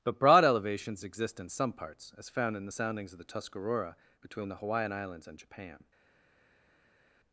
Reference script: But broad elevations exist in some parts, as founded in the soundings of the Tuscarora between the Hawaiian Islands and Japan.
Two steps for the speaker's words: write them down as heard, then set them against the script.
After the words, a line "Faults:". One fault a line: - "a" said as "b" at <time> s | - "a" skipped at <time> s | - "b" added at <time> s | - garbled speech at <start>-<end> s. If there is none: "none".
But broad elevations exist in some parts, as found in the soundings of the Tuscarora between the Hawaiian Islands and Japan.
Faults:
- "founded" said as "found" at 2.3 s